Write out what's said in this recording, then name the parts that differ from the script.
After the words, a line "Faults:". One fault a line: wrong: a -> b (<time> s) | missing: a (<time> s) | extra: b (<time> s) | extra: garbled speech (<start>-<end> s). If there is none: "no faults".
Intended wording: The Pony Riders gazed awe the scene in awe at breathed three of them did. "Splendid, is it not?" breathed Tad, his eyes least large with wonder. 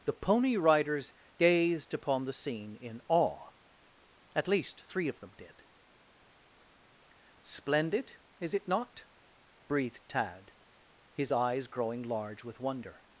The Pony Riders gazed upon the scene in awe at least three of them did. "Splendid, is it not?" breathed Tad, his eyes growing large with wonder.
Faults:
wrong: awe -> upon (1.9 s)
wrong: breathed -> least (4.5 s)
wrong: least -> growing (11.7 s)